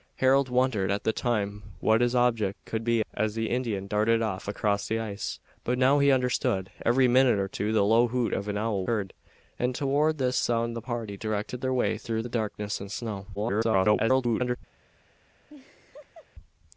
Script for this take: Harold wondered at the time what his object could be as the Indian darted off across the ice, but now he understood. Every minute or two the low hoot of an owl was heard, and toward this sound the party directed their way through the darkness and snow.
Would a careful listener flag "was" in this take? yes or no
yes